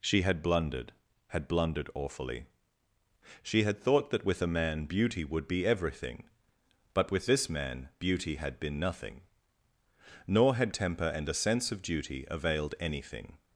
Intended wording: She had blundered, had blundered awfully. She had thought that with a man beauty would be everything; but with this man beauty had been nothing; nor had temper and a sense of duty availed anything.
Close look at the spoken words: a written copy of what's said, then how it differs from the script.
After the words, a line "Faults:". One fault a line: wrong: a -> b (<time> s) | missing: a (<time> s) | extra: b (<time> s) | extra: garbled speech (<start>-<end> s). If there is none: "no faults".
She had blundered, had blundered awfully. She had thought that with a man beauty would be everything; but with this man beauty had been nothing; nor had temper and a sense of duty availed anything.
Faults:
no faults